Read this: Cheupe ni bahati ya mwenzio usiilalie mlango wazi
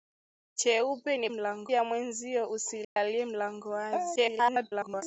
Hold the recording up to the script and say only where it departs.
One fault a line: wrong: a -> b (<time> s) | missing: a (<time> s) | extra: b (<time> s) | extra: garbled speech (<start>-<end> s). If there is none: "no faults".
wrong: bahati -> mlango (1.3 s)
extra: garbled speech (4.2-5.0 s)